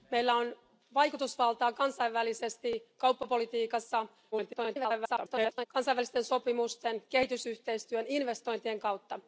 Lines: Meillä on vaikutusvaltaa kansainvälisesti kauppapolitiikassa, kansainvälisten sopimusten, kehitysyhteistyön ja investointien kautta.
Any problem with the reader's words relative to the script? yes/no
yes